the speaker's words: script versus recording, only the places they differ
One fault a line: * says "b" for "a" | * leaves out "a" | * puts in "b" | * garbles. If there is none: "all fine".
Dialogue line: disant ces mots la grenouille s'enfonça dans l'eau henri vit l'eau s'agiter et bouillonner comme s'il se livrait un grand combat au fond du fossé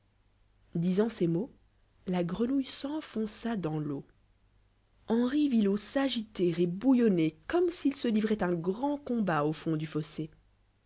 all fine